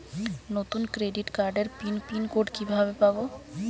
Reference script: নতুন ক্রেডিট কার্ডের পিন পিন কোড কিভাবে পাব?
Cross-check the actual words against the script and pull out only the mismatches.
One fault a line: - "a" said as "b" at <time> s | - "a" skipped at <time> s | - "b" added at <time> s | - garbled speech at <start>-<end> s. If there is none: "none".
none